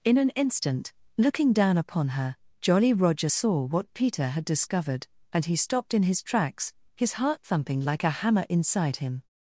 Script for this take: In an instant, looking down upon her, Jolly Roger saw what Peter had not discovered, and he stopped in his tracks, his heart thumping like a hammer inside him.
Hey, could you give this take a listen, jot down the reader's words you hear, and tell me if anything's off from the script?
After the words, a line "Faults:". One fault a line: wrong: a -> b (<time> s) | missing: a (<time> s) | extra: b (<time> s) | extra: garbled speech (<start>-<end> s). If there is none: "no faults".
In an instant, looking down upon her, Jolly Roger saw what Peter had discovered, and he stopped in his tracks, his heart thumping like a hammer inside him.
Faults:
missing: not (4.5 s)